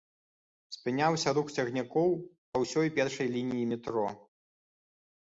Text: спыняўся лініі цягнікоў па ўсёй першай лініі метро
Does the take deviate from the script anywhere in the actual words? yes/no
yes